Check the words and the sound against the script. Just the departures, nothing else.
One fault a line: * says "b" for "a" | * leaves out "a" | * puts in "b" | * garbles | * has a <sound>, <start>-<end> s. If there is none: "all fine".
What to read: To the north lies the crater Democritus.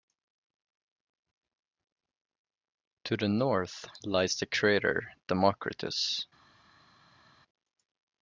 all fine